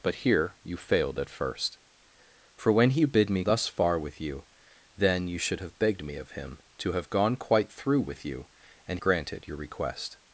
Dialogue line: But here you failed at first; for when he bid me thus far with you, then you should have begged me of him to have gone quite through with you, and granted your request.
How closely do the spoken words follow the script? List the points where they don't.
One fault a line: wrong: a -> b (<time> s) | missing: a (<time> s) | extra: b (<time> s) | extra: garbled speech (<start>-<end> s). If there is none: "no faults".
no faults